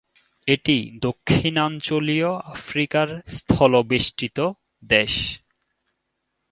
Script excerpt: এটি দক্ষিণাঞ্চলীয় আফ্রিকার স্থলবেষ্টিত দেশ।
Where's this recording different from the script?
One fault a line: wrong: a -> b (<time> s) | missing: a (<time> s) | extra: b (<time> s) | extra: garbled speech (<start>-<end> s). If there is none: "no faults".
no faults